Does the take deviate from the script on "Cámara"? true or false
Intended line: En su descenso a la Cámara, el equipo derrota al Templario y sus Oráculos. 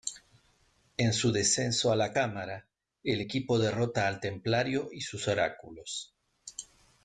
false